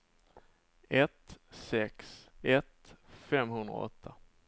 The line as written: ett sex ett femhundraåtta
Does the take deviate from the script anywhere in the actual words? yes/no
no